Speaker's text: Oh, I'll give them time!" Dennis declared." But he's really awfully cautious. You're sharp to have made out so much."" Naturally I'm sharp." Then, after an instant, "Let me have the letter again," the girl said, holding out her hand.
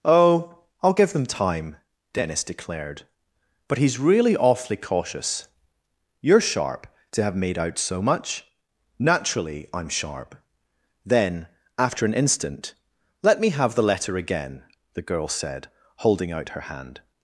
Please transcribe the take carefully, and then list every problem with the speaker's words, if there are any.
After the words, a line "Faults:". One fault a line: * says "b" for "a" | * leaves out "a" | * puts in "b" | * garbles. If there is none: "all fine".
Oh, I'll give them time!" Dennis declared." But he's really awfully cautious. You're sharp to have made out so much."" Naturally I'm sharp." Then, after an instant, "Let me have the letter again," the girl said, holding out her hand.
Faults:
all fine